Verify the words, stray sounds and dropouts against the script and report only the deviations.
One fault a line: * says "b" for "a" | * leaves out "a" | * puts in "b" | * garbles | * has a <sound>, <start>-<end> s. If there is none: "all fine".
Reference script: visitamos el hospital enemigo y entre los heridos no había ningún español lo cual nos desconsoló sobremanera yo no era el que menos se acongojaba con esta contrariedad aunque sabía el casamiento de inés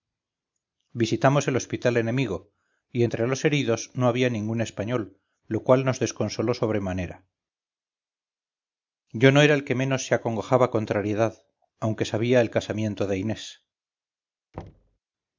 * leaves out "con esta"
* has a thud, 14.5-15.0 s